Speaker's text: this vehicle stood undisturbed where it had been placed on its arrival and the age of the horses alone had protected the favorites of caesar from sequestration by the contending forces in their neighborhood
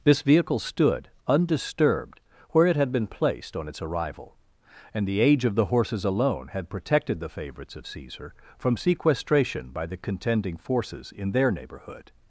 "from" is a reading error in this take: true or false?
false